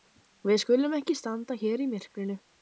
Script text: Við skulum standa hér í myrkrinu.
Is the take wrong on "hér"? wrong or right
right